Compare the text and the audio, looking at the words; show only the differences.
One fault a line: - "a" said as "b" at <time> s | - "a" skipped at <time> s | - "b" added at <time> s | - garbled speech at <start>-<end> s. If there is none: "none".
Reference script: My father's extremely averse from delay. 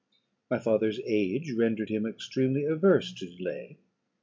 - "age rendered him" added at 1.1 s
- "from" said as "to" at 3.1 s